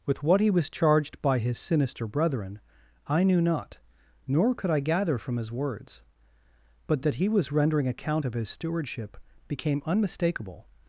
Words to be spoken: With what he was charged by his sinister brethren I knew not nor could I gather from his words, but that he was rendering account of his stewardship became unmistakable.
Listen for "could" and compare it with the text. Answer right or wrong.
right